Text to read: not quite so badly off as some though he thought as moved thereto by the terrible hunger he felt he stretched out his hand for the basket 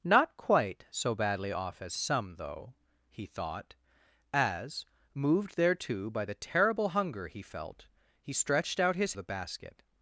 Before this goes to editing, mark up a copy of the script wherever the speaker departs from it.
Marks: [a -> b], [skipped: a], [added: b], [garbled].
not quite so badly off as some though he thought as moved thereto by the terrible hunger he felt he stretched out his [skipped: hand for] the basket